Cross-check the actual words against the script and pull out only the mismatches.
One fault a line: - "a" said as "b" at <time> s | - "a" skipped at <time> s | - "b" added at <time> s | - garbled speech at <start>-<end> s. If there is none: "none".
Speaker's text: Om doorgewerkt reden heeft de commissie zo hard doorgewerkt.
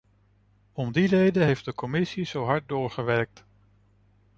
- "doorgewerkt" said as "die" at 0.9 s